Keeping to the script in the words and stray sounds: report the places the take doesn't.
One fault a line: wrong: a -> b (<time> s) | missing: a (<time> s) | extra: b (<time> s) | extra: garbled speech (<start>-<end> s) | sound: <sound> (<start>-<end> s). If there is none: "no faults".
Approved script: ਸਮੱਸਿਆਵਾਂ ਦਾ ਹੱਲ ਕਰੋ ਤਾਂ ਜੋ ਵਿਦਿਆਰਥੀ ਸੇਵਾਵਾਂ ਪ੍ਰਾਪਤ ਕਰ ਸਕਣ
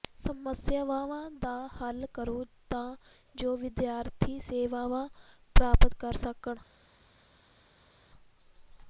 no faults